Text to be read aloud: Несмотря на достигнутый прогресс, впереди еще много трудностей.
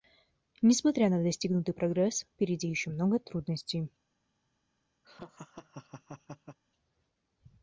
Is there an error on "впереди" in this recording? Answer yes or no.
no